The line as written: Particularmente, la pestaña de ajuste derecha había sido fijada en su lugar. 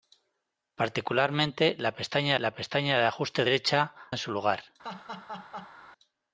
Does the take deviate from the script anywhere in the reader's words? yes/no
yes